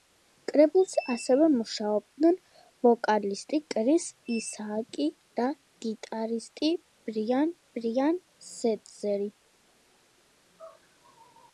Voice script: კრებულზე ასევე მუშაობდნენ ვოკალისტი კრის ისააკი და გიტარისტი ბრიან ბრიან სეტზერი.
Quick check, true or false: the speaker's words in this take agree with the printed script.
true